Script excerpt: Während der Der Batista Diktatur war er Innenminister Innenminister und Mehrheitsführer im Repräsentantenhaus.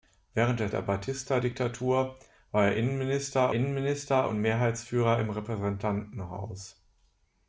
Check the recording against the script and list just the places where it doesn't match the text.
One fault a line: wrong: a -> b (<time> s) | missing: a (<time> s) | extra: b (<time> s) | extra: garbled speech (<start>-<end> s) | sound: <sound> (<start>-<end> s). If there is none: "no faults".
no faults